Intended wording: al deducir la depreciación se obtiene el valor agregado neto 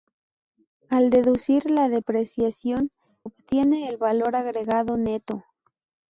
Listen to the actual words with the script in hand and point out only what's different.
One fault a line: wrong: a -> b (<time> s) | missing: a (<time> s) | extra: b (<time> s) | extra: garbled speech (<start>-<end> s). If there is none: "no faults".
missing: se (2.9 s)